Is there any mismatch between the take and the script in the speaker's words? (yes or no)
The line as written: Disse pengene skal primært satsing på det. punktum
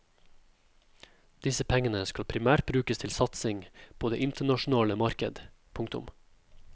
yes